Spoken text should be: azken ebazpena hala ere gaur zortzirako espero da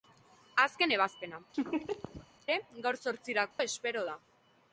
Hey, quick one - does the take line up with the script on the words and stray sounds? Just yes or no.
no